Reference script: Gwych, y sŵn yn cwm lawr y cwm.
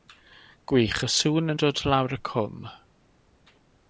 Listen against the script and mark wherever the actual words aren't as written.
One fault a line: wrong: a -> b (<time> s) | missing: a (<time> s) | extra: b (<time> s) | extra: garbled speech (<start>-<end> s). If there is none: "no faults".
wrong: cwm -> dod (1.6 s)